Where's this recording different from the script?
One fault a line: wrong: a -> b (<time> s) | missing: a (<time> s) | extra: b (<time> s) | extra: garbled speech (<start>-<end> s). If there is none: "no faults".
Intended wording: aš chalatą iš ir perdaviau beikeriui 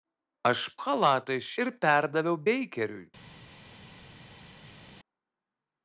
no faults